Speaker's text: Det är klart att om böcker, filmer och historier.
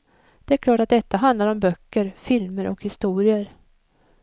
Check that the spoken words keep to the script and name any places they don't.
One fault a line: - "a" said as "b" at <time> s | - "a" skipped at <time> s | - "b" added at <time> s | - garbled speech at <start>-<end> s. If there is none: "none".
- "detta handlar" added at 0.9 s